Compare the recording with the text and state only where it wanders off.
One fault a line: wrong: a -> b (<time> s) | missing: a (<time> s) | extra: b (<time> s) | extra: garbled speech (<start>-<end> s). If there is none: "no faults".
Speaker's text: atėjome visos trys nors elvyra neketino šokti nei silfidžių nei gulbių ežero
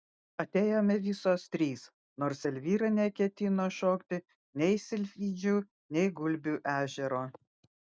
no faults